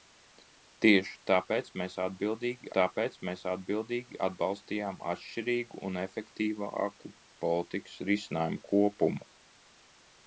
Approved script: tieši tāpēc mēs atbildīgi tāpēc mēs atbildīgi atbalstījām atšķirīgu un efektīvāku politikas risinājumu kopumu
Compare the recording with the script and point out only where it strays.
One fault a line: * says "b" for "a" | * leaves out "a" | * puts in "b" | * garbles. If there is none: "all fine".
all fine